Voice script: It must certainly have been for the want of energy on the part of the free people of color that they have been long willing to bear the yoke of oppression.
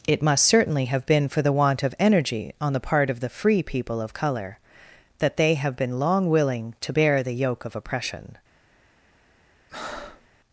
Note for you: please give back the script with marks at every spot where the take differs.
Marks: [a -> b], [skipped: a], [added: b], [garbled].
It must certainly have been for the want of energy on the part of the free people of color that they have been long willing to bear the yoke of oppression.